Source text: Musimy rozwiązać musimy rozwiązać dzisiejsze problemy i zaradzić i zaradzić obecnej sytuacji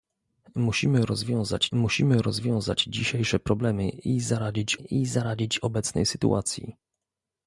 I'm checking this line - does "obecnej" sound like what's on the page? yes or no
yes